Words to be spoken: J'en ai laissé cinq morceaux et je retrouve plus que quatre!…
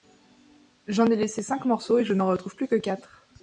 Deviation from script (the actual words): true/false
true